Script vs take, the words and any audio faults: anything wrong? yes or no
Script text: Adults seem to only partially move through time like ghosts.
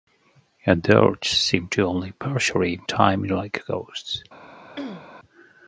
yes